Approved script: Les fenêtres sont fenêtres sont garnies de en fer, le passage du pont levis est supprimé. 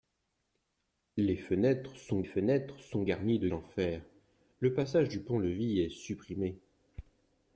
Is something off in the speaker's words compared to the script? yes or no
no